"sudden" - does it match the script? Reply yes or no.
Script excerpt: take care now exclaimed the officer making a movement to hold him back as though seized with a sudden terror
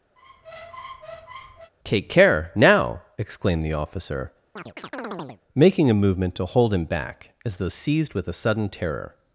yes